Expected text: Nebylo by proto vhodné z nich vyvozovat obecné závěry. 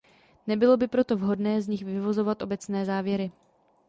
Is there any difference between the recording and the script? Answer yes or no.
no